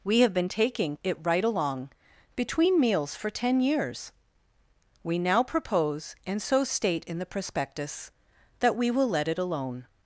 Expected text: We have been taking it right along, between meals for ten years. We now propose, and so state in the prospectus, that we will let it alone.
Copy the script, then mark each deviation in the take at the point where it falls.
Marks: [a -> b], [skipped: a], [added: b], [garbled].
We have been taking it right along, between meals for ten years. We now propose, and so state in the prospectus, that we will let it alone.